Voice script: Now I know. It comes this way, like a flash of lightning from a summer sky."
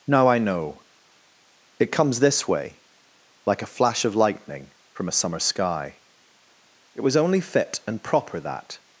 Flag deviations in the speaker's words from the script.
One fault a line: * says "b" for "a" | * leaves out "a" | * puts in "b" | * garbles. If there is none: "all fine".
* puts in "It was only fit and proper that"